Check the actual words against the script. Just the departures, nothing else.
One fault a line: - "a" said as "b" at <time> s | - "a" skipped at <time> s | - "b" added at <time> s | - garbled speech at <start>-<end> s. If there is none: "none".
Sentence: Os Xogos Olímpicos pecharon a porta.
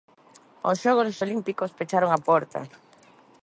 none